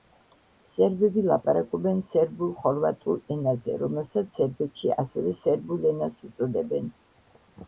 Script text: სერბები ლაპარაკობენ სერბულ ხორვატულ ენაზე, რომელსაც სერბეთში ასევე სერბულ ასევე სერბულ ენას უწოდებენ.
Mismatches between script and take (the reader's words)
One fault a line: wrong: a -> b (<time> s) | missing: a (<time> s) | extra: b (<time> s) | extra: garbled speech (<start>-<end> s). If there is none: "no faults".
missing: ასევე სერბულ (5.9 s)